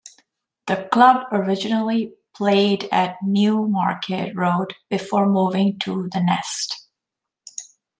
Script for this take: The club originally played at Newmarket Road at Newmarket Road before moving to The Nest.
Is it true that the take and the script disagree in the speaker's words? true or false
true